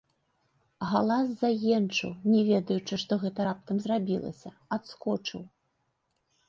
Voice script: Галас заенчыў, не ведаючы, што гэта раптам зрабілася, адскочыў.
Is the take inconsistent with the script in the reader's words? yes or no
no